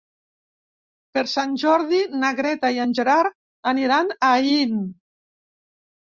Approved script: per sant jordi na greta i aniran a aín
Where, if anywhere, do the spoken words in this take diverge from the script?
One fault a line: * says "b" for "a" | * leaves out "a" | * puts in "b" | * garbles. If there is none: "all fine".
* puts in "en gerard"